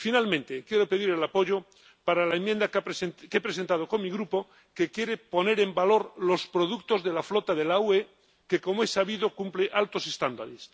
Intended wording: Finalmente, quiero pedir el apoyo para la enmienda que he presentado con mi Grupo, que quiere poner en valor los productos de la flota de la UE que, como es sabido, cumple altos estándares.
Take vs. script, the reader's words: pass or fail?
pass